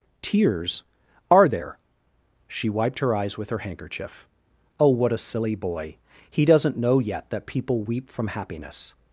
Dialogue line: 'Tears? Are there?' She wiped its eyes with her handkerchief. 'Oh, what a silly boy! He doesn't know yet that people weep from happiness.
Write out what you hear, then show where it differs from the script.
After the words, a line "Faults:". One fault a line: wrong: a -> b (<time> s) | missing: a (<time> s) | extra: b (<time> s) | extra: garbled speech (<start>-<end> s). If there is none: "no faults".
'Tears? Are there?' She wiped her eyes with her handkerchief. 'Oh, what a silly boy! He doesn't know yet that people weep from happiness.
Faults:
wrong: its -> her (3.0 s)